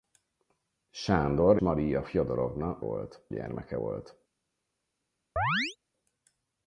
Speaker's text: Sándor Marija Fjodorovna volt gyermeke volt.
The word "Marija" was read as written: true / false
true